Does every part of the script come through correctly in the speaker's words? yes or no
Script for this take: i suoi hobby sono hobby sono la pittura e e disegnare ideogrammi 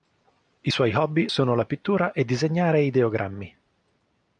no